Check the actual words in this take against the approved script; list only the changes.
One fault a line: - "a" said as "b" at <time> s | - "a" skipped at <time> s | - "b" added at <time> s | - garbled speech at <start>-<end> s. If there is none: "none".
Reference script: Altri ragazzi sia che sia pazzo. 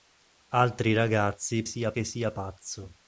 none